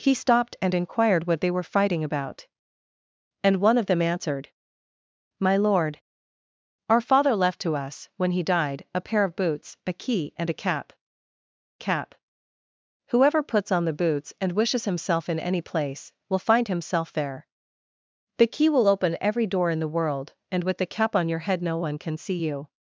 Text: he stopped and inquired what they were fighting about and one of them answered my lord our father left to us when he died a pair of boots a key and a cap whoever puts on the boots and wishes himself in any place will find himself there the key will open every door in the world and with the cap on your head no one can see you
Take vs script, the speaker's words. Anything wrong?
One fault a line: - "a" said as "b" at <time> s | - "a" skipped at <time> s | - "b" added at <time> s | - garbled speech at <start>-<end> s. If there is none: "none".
- "cap" added at 11.8 s